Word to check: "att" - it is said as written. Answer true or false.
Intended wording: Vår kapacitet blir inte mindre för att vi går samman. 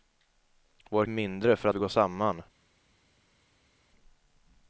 false